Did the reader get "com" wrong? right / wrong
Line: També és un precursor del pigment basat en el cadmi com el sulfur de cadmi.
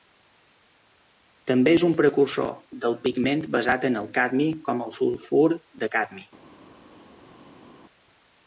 right